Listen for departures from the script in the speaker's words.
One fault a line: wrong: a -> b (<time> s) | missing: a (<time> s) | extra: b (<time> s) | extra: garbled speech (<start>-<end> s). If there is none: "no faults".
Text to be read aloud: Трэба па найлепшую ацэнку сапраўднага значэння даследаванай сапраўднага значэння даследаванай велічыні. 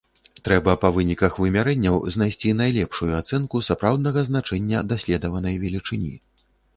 wrong: найлепшую ацэнку сапраўднага значэння даследаванай -> выніках вымярэнняў знайсці найлепшую ацэнку (0.9 s)